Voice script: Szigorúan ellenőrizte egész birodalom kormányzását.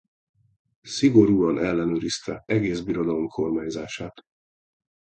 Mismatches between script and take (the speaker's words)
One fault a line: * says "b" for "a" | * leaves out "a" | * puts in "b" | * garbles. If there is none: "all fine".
all fine